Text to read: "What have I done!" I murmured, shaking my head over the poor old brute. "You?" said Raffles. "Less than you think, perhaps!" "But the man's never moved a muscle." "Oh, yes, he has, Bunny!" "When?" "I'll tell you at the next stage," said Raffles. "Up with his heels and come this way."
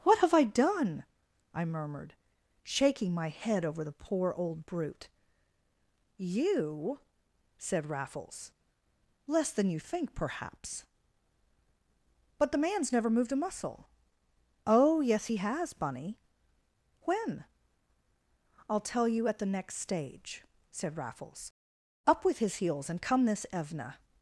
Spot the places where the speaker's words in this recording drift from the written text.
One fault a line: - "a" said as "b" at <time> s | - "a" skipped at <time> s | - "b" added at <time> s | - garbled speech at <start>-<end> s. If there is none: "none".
- "way" said as "evna" at 23.5 s